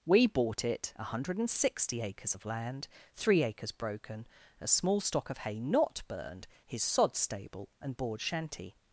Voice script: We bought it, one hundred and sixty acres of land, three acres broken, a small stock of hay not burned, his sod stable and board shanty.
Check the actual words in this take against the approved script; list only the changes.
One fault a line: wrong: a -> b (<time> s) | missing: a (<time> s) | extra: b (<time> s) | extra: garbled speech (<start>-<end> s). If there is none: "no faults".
no faults